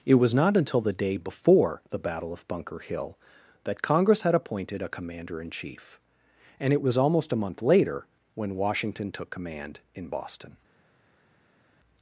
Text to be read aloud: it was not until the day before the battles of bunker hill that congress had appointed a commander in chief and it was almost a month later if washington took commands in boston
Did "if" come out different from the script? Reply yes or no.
yes